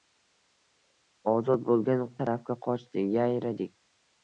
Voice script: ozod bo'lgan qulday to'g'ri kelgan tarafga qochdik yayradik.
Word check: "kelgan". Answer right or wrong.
wrong